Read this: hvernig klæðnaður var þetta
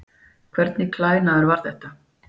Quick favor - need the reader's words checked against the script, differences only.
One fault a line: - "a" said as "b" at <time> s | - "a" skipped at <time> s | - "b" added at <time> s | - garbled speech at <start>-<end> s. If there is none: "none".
none